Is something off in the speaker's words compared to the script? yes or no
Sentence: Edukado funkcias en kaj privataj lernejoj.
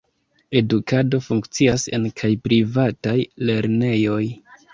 no